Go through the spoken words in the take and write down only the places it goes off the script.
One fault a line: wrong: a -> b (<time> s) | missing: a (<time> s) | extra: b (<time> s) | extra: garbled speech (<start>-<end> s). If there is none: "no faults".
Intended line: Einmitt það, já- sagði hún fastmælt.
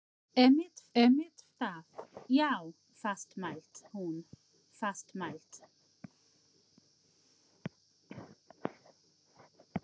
extra: einmitt (1.0 s)
wrong: sagði -> fastmælt (3.0 s)